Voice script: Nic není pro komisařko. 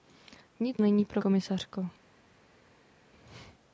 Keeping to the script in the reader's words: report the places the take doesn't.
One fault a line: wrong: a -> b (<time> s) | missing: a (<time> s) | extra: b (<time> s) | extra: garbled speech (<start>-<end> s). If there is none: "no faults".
no faults